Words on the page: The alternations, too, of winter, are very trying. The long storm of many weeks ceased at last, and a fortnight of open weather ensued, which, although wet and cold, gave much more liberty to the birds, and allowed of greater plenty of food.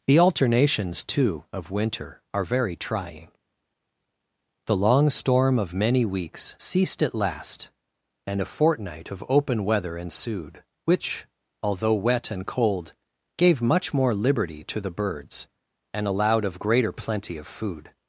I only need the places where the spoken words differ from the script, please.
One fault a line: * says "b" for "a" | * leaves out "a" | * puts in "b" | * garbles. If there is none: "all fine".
all fine